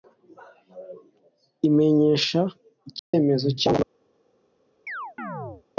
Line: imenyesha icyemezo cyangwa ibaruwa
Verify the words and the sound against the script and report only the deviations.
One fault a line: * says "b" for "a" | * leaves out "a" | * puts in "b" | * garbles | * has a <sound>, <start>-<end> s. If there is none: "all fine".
* has a dropout, 3.0-3.1 s
* has a chirp, 4.9-5.6 s